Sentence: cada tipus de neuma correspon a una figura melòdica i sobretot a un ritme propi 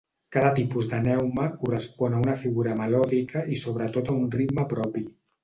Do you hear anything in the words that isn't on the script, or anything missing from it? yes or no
no